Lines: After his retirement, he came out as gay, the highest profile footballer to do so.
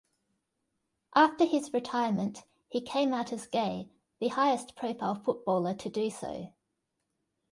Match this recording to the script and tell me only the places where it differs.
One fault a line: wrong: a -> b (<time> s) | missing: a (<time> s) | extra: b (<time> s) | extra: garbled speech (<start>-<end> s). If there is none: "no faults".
no faults